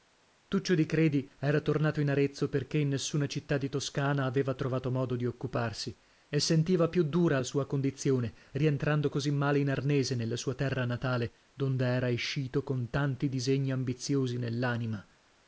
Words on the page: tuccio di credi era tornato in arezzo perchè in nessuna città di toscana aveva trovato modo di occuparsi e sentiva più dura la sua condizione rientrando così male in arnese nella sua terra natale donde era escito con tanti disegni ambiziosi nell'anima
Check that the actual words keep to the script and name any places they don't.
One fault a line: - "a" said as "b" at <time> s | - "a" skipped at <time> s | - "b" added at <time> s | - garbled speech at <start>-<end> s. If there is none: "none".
none